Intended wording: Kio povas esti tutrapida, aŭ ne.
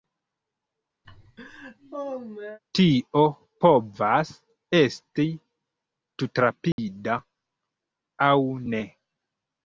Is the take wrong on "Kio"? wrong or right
wrong